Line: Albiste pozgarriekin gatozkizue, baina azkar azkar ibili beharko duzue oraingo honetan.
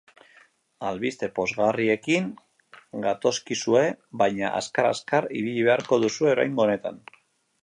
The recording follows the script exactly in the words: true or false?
true